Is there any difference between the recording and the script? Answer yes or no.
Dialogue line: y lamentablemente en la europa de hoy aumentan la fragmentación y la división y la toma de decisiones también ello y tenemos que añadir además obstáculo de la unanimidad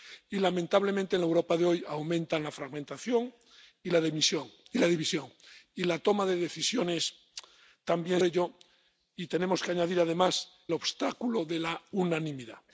no